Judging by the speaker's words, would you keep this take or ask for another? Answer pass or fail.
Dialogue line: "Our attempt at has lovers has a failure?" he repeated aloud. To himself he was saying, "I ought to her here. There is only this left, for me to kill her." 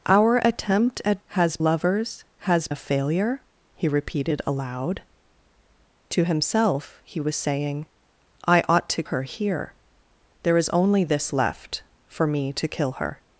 pass